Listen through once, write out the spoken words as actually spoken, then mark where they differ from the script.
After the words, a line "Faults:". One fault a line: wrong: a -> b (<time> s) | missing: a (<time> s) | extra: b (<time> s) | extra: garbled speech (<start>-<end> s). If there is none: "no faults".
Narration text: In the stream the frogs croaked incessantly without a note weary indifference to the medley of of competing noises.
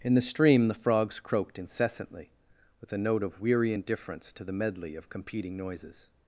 In the stream the frogs croaked incessantly with a note of weary indifference to the medley of competing noises.
Faults:
wrong: without -> with (2.8 s)
extra: of (3.2 s)
missing: of (5.1 s)